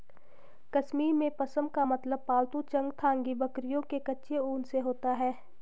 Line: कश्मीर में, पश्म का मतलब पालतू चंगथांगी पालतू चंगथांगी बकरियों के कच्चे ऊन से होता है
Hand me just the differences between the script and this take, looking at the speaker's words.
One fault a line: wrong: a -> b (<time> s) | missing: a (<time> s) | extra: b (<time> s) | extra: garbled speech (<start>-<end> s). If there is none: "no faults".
missing: पालतू चंगथांगी (3.3 s)